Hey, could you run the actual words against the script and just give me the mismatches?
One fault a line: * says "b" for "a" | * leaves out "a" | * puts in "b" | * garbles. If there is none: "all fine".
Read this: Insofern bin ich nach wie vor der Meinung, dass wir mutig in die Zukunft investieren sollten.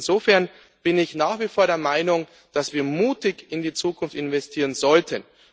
all fine